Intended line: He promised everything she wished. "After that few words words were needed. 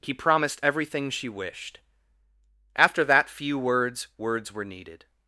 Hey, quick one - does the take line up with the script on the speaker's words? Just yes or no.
yes